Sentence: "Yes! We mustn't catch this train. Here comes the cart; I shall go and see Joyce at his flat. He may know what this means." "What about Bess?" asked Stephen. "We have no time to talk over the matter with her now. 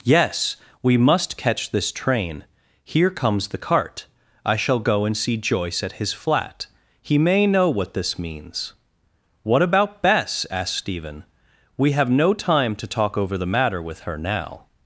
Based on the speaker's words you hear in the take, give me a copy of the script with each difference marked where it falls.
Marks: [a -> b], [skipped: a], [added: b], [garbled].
"Yes! We [mustn't -> must] catch this train. Here comes the cart; I shall go and see Joyce at his flat. He may know what this means." "What about Bess?" asked Stephen. "We have no time to talk over the matter with her now.